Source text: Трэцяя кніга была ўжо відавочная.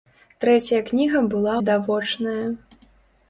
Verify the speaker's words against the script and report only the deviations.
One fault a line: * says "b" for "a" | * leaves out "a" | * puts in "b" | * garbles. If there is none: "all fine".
* leaves out "ўжо"